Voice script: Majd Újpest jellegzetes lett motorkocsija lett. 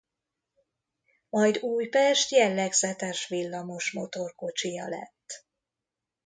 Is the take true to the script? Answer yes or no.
no